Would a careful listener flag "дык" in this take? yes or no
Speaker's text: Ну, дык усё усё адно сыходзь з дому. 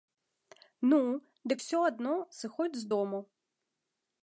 no